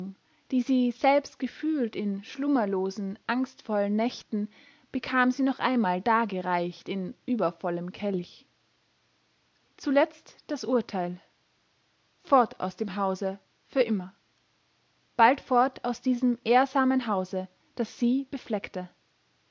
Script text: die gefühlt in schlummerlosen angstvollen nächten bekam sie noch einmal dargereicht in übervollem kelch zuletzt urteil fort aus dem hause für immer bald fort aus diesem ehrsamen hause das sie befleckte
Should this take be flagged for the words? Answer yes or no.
yes